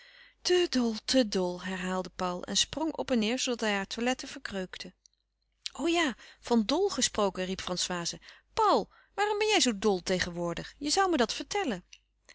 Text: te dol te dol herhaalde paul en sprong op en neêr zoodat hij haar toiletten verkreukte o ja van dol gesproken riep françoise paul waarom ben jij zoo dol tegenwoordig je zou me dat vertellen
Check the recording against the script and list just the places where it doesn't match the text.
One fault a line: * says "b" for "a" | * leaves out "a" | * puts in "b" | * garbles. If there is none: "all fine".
all fine